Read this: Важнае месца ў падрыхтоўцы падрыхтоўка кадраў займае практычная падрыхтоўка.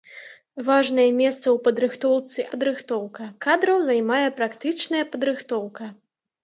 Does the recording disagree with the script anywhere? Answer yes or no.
no